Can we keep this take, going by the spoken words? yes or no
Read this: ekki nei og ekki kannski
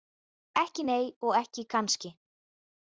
yes